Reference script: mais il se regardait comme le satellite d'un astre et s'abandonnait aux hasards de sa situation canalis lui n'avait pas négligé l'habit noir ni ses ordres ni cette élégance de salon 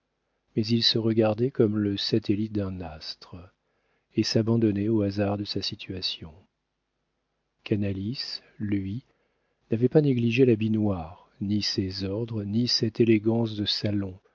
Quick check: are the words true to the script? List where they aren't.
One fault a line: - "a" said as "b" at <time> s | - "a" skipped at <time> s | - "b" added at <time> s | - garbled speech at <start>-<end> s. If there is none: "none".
none